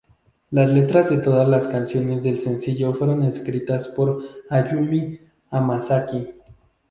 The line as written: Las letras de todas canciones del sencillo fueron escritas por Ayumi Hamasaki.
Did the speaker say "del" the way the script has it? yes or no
yes